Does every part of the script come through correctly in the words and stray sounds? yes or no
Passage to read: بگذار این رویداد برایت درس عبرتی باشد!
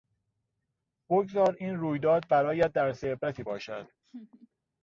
no